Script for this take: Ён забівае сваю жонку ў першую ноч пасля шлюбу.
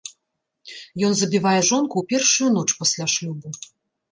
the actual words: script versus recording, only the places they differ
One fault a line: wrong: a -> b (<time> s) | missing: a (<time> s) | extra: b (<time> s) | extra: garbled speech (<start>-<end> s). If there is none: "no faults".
missing: сваю (1.6 s)